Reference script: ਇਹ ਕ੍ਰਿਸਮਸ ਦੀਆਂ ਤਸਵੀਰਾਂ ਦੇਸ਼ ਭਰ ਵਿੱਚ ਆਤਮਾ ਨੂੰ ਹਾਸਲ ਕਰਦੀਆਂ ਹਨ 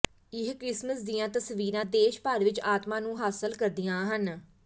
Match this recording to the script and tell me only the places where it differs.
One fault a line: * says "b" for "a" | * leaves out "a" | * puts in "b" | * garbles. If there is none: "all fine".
all fine